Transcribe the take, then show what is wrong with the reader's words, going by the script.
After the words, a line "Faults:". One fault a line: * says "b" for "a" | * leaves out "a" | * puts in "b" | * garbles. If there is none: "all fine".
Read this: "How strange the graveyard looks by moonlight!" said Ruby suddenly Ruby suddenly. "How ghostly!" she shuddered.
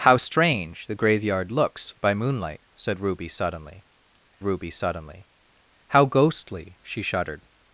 "How strange the graveyard looks by moonlight!" said Ruby suddenly Ruby suddenly. "How ghostly!" she shuddered.
Faults:
all fine